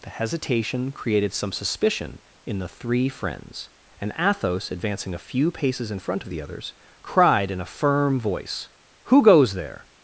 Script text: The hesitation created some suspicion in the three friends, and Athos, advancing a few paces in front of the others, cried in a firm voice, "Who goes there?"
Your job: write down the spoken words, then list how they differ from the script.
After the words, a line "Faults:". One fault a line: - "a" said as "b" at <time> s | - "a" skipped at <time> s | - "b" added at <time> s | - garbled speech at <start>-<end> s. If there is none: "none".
The hesitation created some suspicion in the three friends, and Athos, advancing a few paces in front of the others, cried in a firm voice, "Who goes there?"
Faults:
none